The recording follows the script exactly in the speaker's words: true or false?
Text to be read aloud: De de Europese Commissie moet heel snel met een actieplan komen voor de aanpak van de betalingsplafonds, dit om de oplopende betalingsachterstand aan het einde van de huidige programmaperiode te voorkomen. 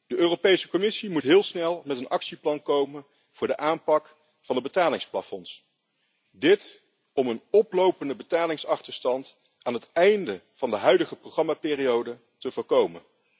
false